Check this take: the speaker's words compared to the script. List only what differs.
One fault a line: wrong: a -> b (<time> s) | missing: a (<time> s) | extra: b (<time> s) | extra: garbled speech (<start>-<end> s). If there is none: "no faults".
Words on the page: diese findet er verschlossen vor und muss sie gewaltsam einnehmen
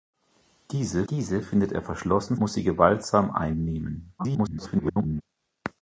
extra: diese (1.1 s)
missing: vor und (2.4 s)
extra: garbled speech (4.2-5.2 s)